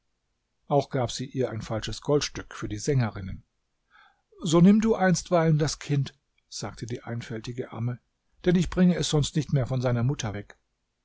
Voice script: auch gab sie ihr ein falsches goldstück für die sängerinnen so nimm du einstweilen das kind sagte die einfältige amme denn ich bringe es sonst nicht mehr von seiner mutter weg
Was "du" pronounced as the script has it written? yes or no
yes